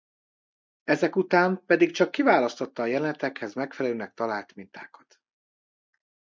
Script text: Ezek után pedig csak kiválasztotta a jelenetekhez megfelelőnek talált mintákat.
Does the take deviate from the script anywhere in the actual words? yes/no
no